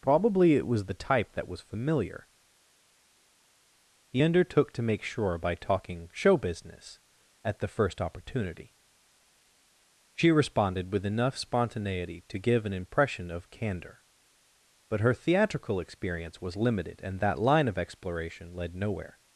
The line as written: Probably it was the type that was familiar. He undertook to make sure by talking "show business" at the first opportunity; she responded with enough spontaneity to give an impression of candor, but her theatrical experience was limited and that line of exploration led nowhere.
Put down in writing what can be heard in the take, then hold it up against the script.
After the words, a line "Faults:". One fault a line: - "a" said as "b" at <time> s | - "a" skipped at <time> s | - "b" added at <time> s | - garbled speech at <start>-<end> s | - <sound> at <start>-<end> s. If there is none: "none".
Probably it was the type that was familiar. He undertook to make sure by talking "show business" at the first opportunity; she responded with enough spontaneity to give an impression of candor, but her theatrical experience was limited and that line of exploration led nowhere.
Faults:
none